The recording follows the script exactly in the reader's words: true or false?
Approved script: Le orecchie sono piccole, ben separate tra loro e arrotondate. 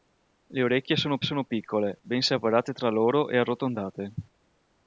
false